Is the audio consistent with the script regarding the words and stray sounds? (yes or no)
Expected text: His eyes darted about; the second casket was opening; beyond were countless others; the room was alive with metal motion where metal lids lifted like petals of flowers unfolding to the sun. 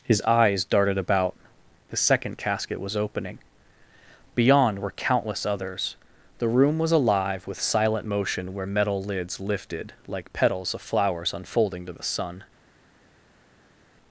no